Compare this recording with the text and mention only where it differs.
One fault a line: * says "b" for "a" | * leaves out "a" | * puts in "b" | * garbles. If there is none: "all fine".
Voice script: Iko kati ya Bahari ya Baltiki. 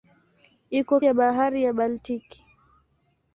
* leaves out "kati"